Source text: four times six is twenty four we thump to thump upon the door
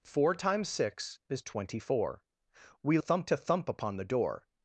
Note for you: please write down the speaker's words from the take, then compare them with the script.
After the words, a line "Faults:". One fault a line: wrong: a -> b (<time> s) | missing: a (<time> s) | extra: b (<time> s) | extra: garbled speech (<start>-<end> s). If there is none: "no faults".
four times six is twenty four we thump to thump upon the door
Faults:
no faults